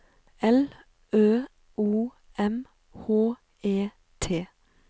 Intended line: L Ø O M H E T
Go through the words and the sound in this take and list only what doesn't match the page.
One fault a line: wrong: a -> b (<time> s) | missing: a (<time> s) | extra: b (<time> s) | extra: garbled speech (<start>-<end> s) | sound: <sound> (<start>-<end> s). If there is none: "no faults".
no faults